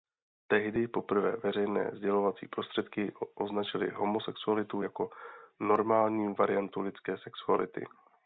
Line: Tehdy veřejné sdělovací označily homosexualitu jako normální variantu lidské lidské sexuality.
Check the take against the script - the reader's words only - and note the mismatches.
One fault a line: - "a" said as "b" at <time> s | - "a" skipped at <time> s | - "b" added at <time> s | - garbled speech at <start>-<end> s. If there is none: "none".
- "poprvé" added at 0.9 s
- "prostředky" added at 2.5 s
- "lidské" skipped at 7.2 s